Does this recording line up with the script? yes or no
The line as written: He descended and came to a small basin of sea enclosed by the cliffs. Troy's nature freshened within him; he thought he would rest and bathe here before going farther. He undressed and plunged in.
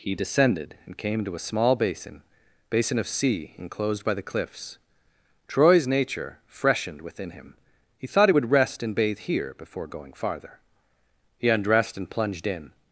no